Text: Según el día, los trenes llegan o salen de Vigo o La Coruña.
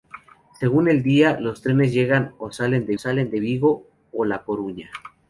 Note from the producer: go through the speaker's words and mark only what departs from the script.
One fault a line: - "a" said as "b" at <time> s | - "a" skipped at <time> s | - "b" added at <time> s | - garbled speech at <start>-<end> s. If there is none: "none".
- "salen de" added at 3.0 s